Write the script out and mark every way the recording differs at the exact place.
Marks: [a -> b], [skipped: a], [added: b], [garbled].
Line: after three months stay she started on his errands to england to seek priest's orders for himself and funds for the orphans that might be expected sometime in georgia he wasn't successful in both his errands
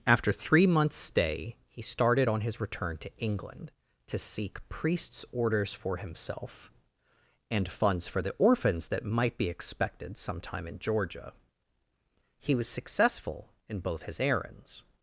after three months stay [she -> he] started on his [errands -> return] to england to seek priest's orders for himself and funds for the orphans that might be expected sometime in georgia he [wasn't -> was] successful in both his errands